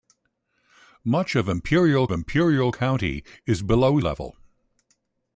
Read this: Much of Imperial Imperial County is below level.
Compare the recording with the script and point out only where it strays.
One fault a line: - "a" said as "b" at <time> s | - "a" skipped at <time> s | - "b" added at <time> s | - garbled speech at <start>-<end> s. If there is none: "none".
none